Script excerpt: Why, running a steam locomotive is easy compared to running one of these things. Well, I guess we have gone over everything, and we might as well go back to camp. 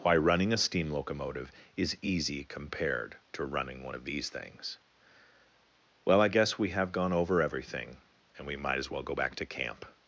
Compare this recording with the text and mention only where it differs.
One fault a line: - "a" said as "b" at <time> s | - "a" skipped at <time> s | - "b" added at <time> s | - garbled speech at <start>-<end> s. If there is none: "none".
none